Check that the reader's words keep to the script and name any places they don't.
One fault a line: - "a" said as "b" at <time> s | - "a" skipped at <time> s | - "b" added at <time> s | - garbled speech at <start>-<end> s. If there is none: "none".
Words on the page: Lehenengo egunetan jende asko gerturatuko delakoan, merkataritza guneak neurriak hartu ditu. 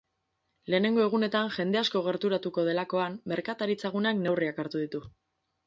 none